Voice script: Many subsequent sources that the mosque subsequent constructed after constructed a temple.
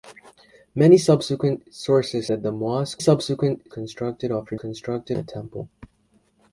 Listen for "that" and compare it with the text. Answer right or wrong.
right